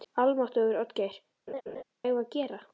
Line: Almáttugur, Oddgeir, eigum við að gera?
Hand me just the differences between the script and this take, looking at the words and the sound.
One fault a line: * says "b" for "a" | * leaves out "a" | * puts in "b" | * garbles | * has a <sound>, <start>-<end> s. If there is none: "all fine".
* has a laugh, 1.5-1.8 s